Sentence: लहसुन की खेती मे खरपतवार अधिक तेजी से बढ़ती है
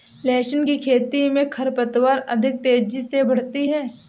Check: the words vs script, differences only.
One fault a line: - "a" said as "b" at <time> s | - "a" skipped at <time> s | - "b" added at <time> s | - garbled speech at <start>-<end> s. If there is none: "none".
none